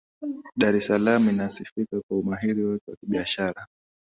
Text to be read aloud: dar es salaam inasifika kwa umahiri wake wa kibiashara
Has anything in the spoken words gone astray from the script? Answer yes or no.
no